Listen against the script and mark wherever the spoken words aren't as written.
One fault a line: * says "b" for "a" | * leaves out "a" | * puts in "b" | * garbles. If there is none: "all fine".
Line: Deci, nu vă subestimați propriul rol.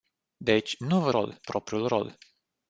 * says "rol" for "subestimați"